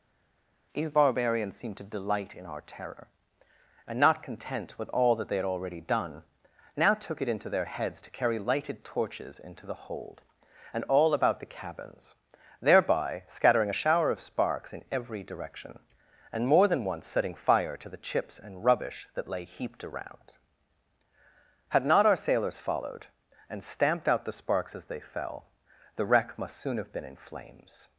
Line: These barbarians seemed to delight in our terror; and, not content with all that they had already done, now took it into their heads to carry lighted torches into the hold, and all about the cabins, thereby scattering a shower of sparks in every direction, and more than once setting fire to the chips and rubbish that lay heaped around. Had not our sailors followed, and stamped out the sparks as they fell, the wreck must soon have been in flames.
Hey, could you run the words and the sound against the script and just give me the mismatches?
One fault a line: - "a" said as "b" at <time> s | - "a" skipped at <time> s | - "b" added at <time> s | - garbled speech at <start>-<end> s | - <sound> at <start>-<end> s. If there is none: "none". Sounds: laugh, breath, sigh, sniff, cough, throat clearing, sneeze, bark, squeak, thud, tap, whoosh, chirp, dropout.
none